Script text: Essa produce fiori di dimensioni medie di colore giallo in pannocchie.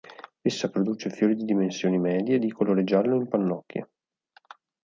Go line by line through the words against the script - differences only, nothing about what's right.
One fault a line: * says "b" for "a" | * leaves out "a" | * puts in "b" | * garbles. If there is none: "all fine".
all fine